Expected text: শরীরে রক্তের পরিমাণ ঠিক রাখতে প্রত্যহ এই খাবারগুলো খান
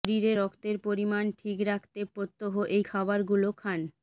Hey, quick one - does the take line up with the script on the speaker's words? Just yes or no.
yes